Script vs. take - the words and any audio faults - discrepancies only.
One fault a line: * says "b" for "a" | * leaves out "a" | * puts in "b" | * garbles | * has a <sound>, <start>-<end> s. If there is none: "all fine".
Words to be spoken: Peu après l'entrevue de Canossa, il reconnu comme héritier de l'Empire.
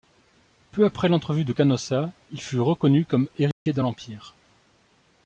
* puts in "fut"
* has a dropout, 3.5-3.7 s